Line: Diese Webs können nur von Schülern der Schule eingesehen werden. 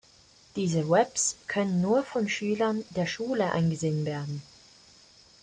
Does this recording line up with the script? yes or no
yes